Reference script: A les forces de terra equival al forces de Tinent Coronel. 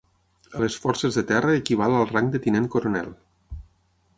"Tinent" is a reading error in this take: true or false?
false